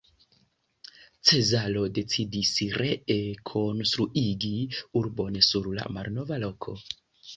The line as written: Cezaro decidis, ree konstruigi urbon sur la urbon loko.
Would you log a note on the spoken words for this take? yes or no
yes